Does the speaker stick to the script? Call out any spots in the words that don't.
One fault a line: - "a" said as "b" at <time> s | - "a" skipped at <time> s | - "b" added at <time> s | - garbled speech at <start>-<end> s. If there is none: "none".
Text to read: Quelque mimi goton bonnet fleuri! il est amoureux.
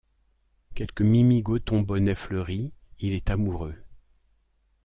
none